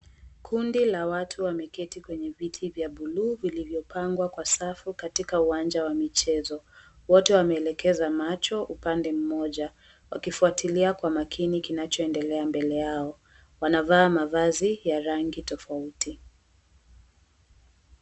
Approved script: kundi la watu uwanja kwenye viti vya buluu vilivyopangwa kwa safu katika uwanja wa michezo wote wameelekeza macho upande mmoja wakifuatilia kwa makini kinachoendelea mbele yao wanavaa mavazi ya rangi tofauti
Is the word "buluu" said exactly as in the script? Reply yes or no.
yes